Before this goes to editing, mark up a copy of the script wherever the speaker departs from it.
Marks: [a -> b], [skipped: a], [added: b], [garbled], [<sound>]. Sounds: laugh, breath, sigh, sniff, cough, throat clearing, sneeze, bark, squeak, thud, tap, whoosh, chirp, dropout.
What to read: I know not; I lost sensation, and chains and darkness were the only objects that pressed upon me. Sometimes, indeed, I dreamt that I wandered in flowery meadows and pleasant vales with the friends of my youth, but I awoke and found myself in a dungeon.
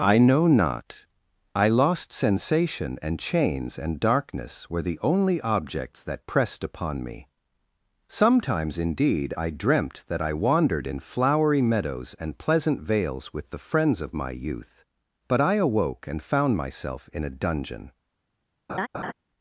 I know not; I lost sensation, and chains and darkness were the only objects that pressed upon me. Sometimes, indeed, I dreamt that I wandered in flowery meadows and pleasant vales with the friends of my youth, but I awoke and found myself in a dungeon. [laugh]